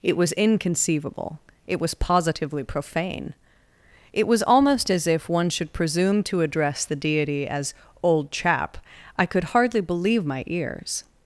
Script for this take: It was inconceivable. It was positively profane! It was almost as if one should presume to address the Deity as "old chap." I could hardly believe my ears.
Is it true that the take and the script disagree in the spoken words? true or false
false